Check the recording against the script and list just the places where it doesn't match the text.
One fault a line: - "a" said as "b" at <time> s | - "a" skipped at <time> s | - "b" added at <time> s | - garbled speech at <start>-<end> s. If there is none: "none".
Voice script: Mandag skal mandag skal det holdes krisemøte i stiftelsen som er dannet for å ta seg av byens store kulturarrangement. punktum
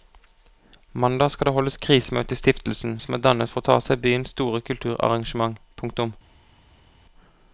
- "mandag skal" skipped at 1.4 s